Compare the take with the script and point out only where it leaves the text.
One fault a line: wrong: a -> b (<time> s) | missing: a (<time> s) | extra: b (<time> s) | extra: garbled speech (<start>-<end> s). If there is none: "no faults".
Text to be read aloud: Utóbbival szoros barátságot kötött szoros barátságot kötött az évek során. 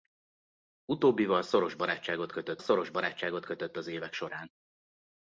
no faults